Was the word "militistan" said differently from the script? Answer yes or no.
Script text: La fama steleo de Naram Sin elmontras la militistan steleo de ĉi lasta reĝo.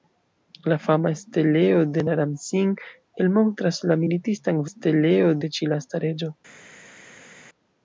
no